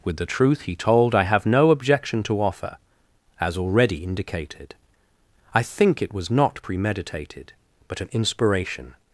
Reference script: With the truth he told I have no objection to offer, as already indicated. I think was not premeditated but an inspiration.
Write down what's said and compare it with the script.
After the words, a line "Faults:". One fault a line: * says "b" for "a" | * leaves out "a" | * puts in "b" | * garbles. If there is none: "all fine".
With the truth he told I have no objection to offer, as already indicated. I think it was not premeditated but an inspiration.
Faults:
* puts in "it"